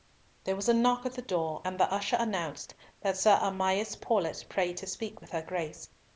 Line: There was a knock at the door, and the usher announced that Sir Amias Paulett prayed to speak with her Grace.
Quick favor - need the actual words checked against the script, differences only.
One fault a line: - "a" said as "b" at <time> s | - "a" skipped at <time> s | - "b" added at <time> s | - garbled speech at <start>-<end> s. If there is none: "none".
none